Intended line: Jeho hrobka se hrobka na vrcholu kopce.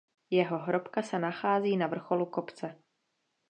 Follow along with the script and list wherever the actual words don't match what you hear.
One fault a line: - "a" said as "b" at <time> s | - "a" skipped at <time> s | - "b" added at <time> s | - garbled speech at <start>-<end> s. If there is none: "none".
- "hrobka" said as "nachází" at 1.2 s